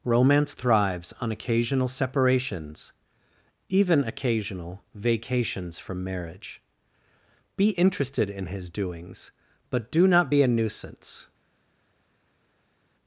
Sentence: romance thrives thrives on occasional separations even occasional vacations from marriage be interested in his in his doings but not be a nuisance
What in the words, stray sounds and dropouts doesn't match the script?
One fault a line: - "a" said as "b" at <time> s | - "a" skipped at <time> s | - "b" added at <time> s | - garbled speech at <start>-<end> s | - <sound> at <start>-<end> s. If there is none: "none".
- "thrives" skipped at 1.1 s
- "in his" skipped at 8.7 s
- "do" added at 9.9 s